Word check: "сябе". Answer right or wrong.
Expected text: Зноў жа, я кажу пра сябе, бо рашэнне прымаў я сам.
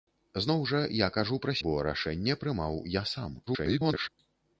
wrong